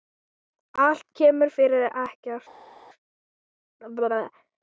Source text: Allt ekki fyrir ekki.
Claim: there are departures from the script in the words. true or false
true